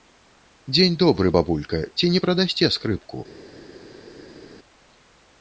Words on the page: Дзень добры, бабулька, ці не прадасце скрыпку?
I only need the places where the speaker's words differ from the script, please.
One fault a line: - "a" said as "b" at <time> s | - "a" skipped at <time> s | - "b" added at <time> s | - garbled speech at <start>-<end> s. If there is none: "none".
none